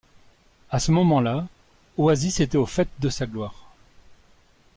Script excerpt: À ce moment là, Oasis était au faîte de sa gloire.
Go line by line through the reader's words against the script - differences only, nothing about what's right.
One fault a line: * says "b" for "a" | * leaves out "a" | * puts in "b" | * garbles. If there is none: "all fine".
all fine